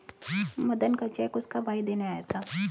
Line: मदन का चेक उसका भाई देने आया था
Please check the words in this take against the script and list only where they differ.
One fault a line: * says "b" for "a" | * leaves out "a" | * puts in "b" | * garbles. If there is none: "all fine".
all fine